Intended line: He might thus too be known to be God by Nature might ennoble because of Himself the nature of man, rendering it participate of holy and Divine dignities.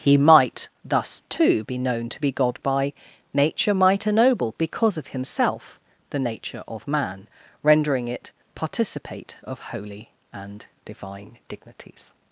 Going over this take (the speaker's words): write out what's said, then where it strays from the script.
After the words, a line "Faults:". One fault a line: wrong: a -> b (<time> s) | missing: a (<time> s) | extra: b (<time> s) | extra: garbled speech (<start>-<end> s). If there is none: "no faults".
He might thus too be known to be God by Nature might ennoble because of Himself the nature of man, rendering it participate of holy and Divine dignities.
Faults:
no faults